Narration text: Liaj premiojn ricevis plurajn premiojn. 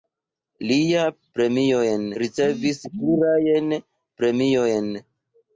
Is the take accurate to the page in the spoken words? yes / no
yes